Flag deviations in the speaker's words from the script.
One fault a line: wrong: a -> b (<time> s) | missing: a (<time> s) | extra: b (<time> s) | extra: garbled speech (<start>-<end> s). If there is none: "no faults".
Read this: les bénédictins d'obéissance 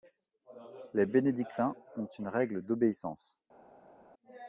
extra: ont une règle (1.9 s)